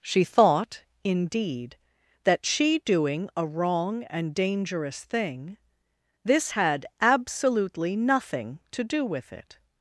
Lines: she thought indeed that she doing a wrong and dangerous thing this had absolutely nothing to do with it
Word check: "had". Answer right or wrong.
right